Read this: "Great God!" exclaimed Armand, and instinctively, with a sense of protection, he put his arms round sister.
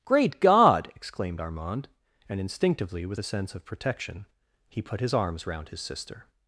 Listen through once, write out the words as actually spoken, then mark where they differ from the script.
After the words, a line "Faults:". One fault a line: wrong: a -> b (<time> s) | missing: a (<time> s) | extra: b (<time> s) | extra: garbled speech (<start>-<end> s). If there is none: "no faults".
"Great God!" exclaimed Armand, and instinctively, with a sense of protection, he put his arms round his sister.
Faults:
extra: his (5.7 s)